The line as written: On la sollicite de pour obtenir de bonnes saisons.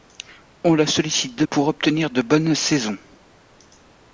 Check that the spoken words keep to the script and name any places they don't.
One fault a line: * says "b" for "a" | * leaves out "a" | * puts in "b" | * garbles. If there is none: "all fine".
all fine